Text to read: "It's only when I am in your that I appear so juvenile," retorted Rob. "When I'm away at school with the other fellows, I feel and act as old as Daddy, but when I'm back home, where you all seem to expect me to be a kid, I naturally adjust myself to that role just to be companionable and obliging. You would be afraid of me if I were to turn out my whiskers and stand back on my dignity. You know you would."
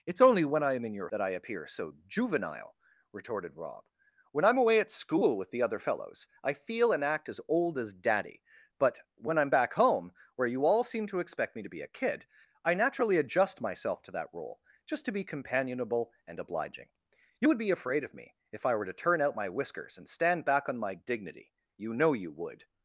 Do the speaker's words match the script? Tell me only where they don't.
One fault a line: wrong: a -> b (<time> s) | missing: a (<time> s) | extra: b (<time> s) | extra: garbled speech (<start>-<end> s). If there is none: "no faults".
no faults